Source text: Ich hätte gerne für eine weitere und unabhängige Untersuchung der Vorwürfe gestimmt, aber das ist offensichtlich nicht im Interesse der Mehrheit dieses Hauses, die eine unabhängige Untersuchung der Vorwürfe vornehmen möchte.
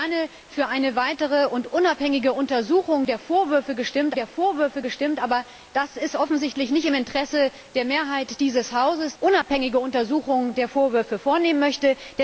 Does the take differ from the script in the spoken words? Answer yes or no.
yes